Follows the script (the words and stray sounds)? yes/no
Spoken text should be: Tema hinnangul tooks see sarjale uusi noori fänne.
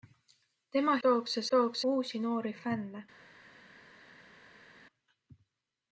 no